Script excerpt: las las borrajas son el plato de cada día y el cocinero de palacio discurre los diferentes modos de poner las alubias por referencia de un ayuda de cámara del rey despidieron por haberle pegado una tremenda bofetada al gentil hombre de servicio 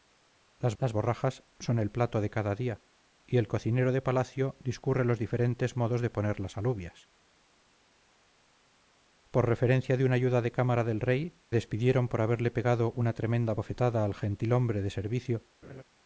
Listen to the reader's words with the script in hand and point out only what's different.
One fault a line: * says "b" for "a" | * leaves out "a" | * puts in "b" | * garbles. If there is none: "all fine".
all fine